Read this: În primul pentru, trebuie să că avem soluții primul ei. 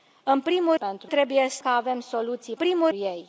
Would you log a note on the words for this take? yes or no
no